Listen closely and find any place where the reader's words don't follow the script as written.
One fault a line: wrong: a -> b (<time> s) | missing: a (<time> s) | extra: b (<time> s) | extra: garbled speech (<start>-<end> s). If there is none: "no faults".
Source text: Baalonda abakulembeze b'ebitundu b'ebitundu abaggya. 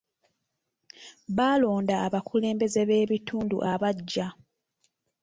missing: b'ebitundu (3.6 s)